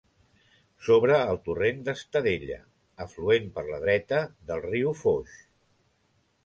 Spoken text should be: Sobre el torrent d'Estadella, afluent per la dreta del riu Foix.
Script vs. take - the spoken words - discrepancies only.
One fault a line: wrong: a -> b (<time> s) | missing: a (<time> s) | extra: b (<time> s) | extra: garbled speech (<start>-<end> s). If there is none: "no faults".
no faults